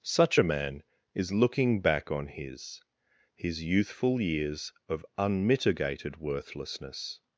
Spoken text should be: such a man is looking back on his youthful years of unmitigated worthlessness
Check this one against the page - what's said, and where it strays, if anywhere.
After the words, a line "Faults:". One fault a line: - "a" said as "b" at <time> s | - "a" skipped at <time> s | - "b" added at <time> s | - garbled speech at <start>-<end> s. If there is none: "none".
such a man is looking back on his his youthful years of unmitigated worthlessness
Faults:
- "his" added at 3.3 s